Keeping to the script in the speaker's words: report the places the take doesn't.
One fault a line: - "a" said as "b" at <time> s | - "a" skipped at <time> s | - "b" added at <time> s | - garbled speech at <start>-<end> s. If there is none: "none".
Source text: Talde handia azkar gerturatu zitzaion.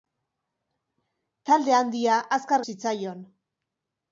- "gerturatu" skipped at 2.6 s